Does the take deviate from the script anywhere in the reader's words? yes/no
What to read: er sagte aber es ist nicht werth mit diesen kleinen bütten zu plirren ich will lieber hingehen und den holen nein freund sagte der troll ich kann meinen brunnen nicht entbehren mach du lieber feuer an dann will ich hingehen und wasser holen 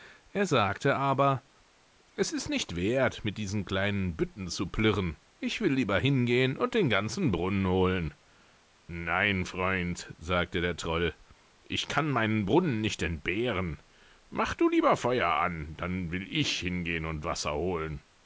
yes